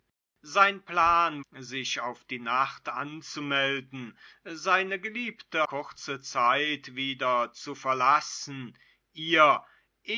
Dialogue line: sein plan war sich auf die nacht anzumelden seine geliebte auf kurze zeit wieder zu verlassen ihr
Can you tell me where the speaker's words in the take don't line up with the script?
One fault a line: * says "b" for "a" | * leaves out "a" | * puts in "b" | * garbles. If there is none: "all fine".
* leaves out "war"
* leaves out "auf"